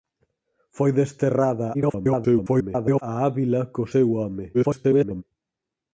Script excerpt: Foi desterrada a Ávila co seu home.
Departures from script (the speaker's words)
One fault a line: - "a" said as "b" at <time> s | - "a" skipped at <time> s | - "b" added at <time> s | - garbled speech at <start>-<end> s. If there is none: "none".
- garbled speech at 1.7-3.0 s
- garbled speech at 4.5-5.2 s